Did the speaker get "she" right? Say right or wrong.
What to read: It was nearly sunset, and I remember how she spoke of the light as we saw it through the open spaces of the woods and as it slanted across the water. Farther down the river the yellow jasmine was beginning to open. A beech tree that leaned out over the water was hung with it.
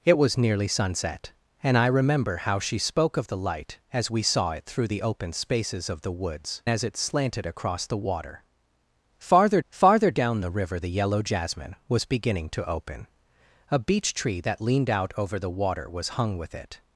right